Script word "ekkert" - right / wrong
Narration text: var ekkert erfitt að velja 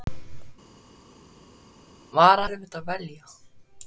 wrong